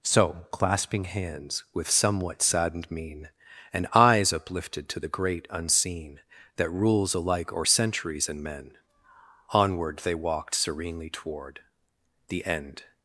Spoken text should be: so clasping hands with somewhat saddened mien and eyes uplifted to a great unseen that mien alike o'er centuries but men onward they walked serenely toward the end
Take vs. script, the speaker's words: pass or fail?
fail